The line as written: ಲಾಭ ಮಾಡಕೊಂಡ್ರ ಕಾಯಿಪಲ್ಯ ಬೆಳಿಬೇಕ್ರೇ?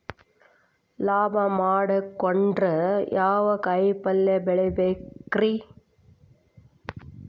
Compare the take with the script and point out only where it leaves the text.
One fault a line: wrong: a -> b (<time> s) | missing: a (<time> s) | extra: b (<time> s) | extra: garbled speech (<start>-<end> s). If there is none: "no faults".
extra: ಯಾವ (3.1 s)